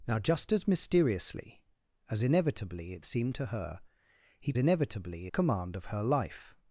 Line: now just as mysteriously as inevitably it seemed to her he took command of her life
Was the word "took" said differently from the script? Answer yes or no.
yes